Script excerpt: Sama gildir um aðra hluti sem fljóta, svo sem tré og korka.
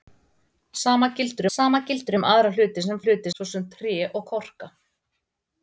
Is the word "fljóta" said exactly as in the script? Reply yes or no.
no